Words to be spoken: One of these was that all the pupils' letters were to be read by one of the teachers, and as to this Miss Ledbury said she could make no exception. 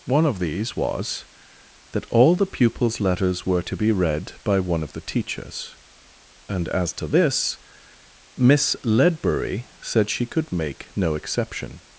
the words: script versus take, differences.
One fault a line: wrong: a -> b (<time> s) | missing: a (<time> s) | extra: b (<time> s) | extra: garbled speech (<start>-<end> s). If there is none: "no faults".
no faults